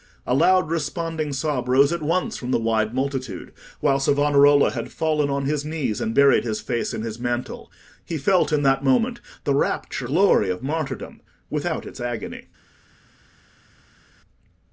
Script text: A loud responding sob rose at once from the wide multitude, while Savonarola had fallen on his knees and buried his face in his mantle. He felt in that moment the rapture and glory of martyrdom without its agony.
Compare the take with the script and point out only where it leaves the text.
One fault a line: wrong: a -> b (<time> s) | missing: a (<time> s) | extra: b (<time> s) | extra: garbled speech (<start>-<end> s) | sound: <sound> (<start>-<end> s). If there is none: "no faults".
missing: and (10.1 s)